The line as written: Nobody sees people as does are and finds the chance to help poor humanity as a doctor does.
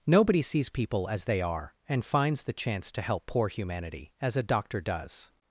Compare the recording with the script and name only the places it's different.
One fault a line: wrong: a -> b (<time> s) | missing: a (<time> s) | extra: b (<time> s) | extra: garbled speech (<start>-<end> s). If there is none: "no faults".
wrong: does -> they (1.2 s)